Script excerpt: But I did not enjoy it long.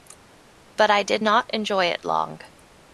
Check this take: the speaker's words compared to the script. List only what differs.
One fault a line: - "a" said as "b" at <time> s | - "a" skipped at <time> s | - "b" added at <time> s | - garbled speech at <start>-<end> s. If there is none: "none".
none